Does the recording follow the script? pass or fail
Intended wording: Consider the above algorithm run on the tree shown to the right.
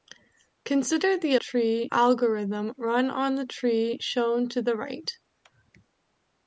fail